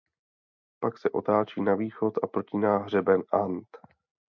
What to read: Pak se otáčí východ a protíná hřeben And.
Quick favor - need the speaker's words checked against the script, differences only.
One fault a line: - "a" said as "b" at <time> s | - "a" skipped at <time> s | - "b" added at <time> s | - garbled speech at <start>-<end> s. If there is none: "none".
- "na" added at 1.6 s